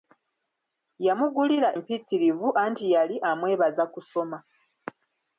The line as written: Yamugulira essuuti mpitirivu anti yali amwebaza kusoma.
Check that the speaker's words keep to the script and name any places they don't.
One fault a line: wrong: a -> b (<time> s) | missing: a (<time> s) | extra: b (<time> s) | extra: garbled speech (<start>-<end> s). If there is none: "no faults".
missing: essuuti (1.7 s)